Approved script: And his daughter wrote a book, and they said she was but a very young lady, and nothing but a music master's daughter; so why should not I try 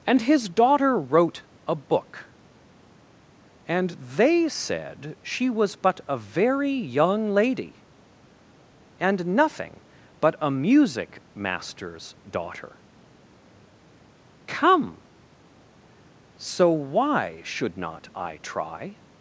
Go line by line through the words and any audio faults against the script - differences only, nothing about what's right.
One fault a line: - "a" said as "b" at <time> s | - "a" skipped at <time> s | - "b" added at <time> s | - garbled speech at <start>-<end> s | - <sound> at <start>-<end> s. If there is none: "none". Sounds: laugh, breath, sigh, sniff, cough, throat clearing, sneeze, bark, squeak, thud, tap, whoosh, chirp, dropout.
- "come" added at 14.5 s